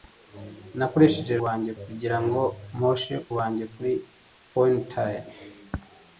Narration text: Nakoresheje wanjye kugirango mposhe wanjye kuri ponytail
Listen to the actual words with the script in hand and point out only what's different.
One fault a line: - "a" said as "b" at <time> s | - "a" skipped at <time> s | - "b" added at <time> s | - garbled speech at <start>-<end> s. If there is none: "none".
none